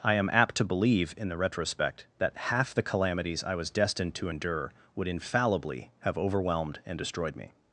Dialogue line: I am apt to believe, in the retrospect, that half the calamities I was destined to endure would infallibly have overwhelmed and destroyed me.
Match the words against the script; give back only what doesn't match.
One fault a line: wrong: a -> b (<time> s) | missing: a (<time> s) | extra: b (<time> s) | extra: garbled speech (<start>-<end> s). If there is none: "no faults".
no faults